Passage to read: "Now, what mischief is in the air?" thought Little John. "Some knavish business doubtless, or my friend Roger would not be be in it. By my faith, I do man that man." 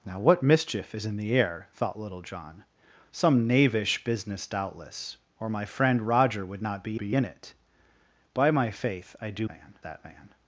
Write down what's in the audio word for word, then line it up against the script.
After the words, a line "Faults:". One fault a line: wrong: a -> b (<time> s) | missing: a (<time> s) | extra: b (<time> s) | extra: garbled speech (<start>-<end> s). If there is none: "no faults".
"Now, what mischief is in the air?" thought Little John. "Some knavish business doubtless, or my friend Roger would not be be in it. By my faith, I do man that man."
Faults:
no faults